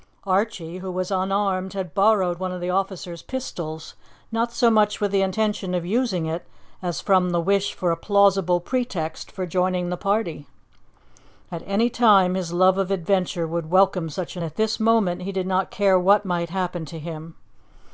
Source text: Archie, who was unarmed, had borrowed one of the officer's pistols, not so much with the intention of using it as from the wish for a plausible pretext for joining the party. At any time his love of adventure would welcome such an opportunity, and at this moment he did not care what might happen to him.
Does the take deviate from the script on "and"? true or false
true